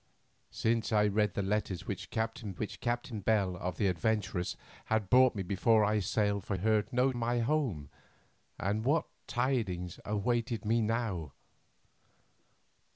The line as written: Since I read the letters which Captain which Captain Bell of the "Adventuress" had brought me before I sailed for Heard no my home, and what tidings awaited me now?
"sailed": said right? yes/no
yes